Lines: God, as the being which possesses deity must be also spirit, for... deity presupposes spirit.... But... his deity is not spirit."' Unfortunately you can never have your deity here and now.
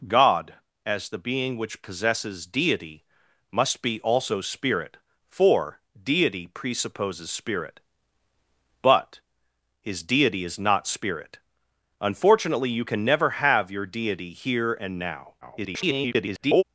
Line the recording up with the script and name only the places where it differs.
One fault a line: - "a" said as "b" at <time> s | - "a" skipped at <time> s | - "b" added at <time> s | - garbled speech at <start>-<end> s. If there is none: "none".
- garbled speech at 15.4-16.6 s